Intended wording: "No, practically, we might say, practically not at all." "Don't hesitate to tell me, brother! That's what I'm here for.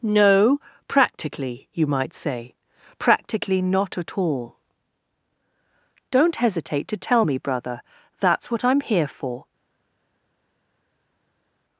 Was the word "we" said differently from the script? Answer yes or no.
yes